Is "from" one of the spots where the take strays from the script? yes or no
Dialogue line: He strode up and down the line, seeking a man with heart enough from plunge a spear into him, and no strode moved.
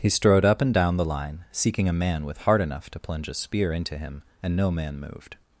yes